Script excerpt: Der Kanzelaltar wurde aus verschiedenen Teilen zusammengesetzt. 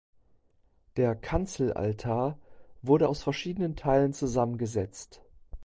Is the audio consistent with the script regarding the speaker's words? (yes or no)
yes